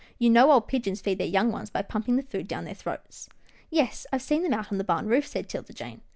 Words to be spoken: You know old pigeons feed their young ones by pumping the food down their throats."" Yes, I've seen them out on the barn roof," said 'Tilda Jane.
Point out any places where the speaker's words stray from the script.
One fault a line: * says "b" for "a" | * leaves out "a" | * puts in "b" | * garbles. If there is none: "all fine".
all fine